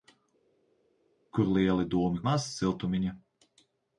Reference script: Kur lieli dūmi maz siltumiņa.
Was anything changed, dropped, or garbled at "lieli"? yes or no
no